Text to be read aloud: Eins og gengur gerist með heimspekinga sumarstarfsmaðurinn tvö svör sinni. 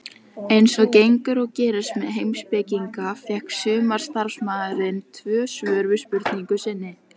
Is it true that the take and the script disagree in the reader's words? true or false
true